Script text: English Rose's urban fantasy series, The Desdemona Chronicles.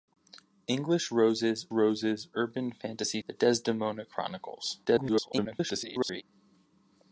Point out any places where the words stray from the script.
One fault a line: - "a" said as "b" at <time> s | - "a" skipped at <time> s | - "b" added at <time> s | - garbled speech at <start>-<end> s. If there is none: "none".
- "Rose's" added at 1.7 s
- "series" skipped at 3.2 s
- garbled speech at 4.9-6.2 s